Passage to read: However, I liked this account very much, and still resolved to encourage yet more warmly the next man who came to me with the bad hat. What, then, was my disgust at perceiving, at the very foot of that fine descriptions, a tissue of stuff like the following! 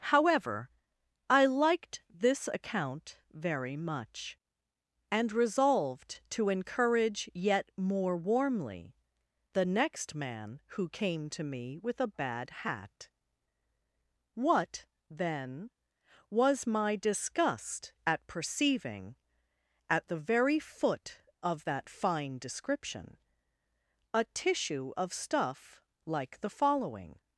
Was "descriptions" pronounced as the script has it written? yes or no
no